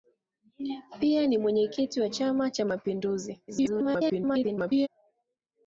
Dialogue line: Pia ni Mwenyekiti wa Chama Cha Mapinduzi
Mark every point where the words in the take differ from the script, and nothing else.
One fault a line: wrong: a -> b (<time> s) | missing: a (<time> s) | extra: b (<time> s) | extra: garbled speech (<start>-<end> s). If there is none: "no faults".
extra: garbled speech (3.5-4.9 s)